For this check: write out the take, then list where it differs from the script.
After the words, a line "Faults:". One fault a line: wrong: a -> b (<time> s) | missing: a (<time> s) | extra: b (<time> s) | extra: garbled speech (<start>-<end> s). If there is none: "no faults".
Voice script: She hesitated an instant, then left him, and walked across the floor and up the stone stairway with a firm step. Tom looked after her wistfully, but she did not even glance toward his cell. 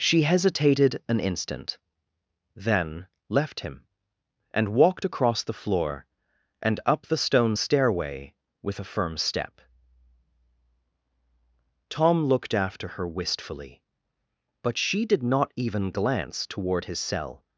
She hesitated an instant, then left him, and walked across the floor and up the stone stairway with a firm step. Tom looked after her wistfully, but she did not even glance toward his cell.
Faults:
no faults